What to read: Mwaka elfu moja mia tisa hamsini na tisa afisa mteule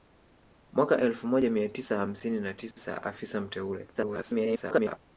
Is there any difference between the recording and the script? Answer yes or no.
yes